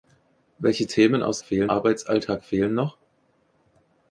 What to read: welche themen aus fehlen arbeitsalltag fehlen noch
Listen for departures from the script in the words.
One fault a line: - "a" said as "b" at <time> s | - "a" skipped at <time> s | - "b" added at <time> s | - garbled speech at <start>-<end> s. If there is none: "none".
none